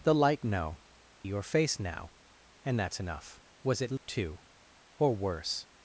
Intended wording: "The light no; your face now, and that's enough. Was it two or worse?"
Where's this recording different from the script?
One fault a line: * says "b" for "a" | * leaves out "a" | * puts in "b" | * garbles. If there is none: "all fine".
all fine